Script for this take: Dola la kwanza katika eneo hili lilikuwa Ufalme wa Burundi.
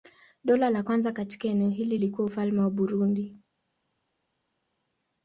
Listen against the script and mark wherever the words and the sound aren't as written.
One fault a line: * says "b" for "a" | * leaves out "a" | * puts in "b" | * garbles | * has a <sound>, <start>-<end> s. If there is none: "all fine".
all fine